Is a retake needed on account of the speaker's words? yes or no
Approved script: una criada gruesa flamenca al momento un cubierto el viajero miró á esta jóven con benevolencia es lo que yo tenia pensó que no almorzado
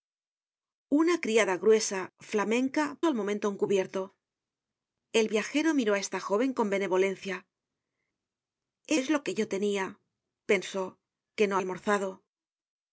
no